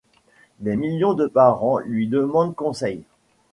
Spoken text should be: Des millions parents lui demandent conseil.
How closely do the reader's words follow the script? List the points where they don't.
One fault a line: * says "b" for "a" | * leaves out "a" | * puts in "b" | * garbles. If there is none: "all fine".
* puts in "de"